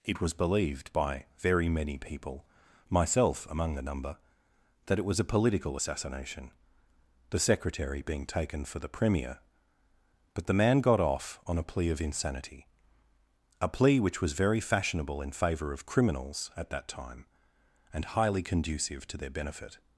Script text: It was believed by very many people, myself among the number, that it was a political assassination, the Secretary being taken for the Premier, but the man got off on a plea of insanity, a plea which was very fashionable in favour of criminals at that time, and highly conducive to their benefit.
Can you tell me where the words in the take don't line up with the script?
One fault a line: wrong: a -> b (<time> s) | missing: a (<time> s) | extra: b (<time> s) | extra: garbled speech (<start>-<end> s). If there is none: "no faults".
no faults